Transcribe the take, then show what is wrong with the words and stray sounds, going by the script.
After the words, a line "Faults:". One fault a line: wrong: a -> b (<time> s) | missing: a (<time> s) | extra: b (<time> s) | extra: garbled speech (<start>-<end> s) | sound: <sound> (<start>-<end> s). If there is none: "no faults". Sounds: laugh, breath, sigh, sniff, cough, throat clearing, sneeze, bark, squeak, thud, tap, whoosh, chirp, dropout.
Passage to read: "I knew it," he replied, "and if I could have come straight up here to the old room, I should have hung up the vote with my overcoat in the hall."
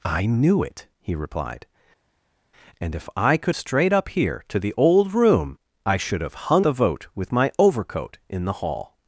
"I knew it," he replied, "and if I could straight up here to the old room, I should have hung the vote with my overcoat in the hall."
Faults:
missing: have come (3.5 s)
missing: up (6.7 s)